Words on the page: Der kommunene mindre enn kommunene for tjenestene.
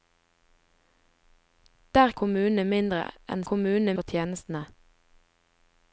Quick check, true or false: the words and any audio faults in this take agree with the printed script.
true